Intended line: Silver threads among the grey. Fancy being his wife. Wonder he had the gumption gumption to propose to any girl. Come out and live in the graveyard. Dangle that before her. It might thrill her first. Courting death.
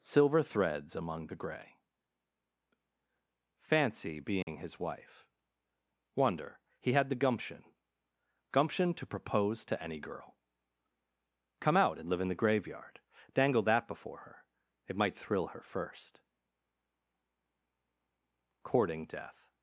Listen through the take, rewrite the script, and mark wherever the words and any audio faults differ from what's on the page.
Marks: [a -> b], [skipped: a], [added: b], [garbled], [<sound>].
Silver threads among the grey. Fancy being [dropout] his wife. Wonder he had the gumption gumption to propose to any girl. Come out and live in the graveyard. Dangle that before her. It might thrill her first. Courting death.